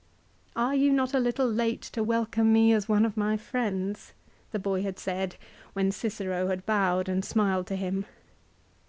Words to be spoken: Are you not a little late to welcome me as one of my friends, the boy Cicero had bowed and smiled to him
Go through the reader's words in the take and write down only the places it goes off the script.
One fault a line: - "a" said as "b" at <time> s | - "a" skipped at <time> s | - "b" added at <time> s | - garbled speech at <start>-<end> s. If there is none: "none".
- "had said when" added at 4.8 s